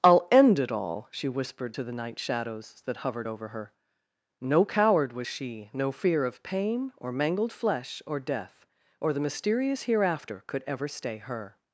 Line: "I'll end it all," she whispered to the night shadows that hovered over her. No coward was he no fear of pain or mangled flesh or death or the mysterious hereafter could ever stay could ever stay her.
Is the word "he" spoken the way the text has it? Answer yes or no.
no